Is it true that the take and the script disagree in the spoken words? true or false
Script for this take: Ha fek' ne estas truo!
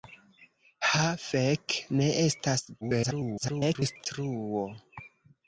true